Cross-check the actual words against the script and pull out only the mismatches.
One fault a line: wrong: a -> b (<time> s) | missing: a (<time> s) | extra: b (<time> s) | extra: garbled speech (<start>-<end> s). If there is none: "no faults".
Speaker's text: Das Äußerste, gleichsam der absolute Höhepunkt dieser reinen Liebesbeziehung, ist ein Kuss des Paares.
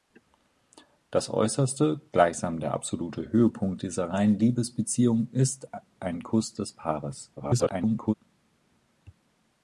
extra: garbled speech (7.4-8.1 s)